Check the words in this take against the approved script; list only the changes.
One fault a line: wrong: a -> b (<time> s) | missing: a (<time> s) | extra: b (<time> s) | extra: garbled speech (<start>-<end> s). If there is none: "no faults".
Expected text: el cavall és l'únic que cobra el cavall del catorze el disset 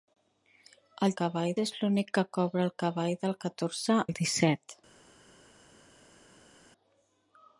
no faults